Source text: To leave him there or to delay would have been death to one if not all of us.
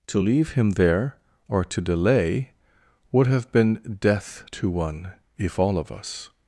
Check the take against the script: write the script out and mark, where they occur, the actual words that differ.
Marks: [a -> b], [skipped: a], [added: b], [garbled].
To leave him there or to delay would have been death to one if [skipped: not] all of us.